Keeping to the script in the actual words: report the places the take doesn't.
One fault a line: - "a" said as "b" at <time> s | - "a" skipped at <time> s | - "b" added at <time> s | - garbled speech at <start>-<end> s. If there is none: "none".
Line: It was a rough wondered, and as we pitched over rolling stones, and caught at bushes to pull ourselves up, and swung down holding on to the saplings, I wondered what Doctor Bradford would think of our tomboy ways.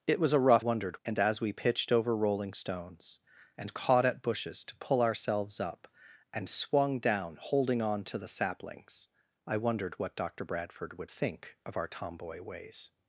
none